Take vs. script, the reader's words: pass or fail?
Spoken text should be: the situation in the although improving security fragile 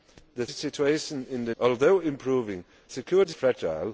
pass